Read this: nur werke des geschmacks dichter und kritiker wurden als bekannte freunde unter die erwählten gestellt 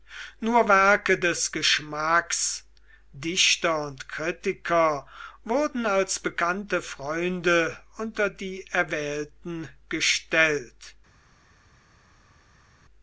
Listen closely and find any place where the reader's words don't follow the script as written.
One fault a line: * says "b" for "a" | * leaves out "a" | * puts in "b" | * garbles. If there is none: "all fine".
all fine